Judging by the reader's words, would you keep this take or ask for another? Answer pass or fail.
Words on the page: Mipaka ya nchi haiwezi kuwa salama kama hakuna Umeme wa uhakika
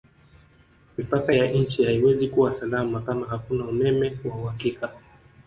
pass